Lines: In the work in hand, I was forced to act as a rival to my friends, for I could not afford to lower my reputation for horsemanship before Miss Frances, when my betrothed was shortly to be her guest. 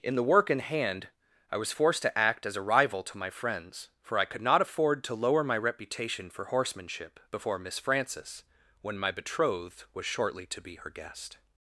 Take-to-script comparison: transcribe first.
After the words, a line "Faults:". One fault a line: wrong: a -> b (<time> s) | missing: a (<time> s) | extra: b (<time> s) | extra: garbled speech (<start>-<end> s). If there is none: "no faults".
In the work in hand, I was forced to act as a rival to my friends, for I could not afford to lower my reputation for horsemanship before Miss Frances, when my betrothed was shortly to be her guest.
Faults:
no faults